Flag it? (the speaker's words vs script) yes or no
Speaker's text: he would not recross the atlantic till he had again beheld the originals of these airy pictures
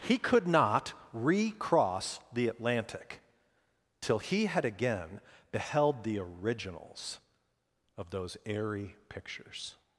yes